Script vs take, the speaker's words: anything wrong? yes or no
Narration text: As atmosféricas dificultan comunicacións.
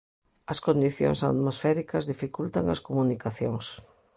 yes